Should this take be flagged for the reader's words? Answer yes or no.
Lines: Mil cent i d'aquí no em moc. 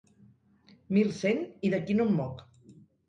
no